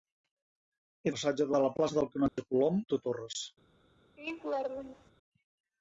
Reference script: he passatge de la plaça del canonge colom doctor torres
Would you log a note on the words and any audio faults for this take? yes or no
yes